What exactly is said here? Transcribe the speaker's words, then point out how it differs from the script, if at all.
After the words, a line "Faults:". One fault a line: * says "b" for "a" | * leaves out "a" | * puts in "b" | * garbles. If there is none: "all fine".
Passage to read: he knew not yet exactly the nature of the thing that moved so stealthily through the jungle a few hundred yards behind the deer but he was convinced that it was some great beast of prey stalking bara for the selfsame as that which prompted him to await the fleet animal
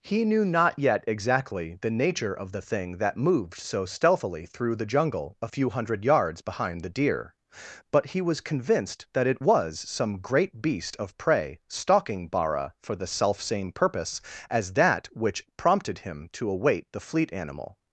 he knew not yet exactly the nature of the thing that moved so stealthily through the jungle a few hundred yards behind the deer but he was convinced that it was some great beast of prey stalking bara for the selfsame purpose as that which prompted him to await the fleet animal
Faults:
* puts in "purpose"